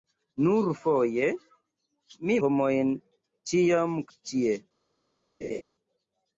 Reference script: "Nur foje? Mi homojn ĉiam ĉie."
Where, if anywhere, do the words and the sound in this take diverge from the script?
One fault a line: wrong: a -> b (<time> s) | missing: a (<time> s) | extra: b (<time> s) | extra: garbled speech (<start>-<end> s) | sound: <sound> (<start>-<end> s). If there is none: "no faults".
sound: laugh (5.4-5.6 s)